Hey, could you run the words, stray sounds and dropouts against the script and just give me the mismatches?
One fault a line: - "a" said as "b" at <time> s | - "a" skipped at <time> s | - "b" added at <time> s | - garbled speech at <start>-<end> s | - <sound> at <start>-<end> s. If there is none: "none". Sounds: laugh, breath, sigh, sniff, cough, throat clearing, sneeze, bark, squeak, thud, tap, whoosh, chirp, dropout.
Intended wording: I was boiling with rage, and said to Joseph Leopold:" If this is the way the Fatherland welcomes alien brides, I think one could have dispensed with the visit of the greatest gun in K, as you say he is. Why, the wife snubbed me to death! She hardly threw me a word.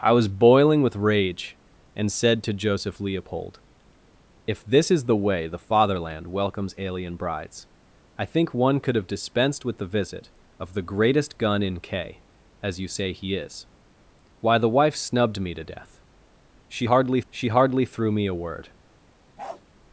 - "she hardly" added at 17.3 s
- bark at 19.4-19.6 s